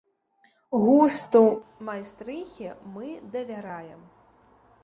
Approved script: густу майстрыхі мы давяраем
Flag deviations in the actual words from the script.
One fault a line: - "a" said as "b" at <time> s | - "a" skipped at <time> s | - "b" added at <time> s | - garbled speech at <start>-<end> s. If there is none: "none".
none